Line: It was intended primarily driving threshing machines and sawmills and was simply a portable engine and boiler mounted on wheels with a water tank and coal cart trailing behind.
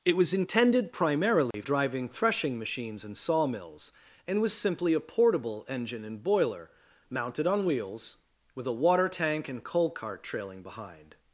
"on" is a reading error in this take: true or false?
false